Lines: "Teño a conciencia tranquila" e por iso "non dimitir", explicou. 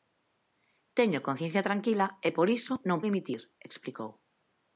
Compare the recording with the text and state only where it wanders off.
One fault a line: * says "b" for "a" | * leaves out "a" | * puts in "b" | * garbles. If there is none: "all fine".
all fine